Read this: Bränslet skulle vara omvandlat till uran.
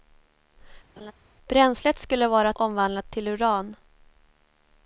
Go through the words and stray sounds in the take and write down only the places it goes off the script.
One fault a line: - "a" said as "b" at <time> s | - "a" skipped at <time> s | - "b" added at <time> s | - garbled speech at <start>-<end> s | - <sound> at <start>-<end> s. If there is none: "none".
- laugh at 1.0-1.1 s